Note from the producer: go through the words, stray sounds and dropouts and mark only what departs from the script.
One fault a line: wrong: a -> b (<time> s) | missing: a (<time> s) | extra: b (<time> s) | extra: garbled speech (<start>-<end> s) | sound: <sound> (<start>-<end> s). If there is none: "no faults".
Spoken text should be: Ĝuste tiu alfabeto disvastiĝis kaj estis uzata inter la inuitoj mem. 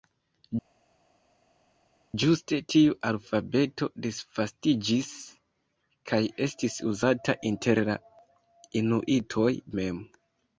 no faults